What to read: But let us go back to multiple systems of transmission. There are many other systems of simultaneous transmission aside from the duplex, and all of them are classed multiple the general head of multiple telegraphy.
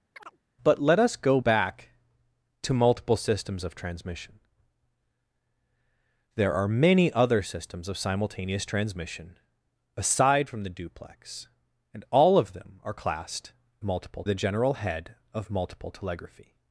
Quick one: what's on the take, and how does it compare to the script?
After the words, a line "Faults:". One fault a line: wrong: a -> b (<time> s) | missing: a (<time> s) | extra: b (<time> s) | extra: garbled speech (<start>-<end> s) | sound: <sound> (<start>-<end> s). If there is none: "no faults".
But let us go back to multiple systems of transmission. There are many other systems of simultaneous transmission aside from the duplex, and all of them are classed multiple the general head of multiple telegraphy.
Faults:
sound: chirp (0.1-0.4 s)